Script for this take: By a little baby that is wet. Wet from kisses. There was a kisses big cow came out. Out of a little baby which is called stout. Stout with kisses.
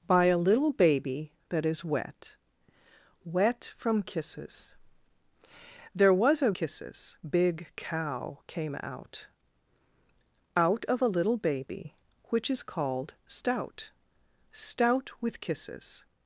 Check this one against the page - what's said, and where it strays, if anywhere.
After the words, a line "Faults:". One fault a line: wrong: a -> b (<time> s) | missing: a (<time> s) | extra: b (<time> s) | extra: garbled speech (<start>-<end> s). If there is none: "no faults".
By a little baby that is wet. Wet from kisses. There was a kisses big cow came out. Out of a little baby which is called stout. Stout with kisses.
Faults:
no faults